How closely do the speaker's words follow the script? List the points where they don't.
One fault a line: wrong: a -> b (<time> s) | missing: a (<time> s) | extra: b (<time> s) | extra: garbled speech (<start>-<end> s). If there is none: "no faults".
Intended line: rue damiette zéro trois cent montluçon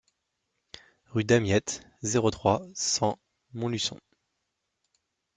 no faults